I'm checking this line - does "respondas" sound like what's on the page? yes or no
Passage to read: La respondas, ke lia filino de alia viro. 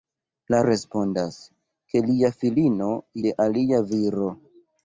yes